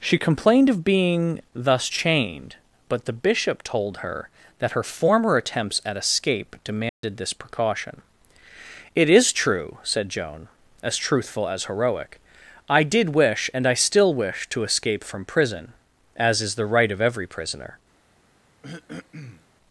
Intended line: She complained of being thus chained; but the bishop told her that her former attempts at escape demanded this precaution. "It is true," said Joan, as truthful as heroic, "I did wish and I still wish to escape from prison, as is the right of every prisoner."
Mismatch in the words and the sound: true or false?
true